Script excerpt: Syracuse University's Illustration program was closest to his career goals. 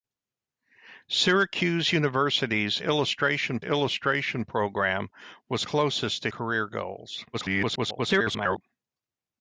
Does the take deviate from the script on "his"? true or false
true